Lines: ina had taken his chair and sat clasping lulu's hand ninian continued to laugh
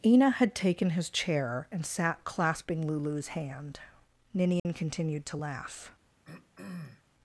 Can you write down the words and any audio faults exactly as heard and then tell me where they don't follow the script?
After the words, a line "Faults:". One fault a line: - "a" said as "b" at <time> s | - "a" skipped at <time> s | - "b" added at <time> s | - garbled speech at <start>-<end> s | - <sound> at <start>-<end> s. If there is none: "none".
ina had taken his chair and sat clasping lulu's hand ninian continued to laugh
Faults:
- dropout at 4.6-4.7 s
- throat clearing at 6.2-7.0 s